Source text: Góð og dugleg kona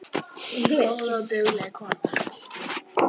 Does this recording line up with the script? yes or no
yes